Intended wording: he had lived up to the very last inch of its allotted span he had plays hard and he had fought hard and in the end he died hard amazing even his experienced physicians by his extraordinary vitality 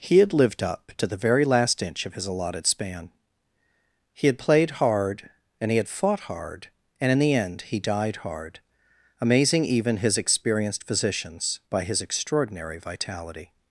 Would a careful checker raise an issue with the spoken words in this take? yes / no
yes